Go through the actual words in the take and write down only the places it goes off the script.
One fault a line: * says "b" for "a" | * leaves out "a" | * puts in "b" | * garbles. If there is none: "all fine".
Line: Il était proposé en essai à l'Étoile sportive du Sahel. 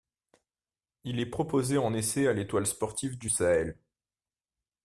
* says "est" for "était"